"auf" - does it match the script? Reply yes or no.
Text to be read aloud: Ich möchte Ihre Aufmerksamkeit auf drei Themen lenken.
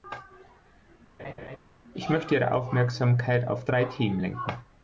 yes